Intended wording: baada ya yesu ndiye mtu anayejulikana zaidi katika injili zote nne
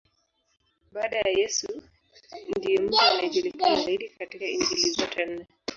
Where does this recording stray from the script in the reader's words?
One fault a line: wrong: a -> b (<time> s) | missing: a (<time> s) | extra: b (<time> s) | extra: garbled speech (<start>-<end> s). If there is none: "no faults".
no faults